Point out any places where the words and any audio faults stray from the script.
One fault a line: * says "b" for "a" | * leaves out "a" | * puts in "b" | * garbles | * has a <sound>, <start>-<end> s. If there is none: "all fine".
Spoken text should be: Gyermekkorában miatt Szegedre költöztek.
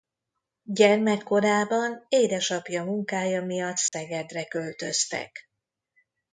* puts in "édesapja munkája"
* has a dropout, 3.9-3.9 s